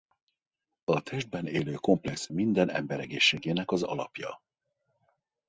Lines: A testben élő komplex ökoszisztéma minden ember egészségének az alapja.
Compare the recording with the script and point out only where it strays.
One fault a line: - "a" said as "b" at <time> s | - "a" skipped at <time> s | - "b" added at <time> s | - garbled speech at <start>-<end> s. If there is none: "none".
- "ökoszisztéma" skipped at 2.3 s